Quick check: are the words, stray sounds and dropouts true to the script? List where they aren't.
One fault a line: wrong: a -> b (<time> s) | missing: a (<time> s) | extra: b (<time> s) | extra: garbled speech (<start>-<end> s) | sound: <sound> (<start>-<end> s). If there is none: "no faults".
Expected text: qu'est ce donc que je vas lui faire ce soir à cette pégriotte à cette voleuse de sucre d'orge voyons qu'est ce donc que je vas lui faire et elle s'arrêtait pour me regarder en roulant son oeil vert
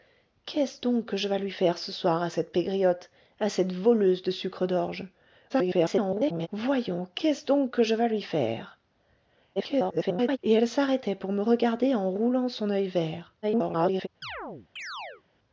extra: garbled speech (5.5-6.5 s)
extra: garbled speech (9.6-10.4 s)
extra: garbled speech (13.4-14.1 s)
sound: chirp (14.2-15.2 s)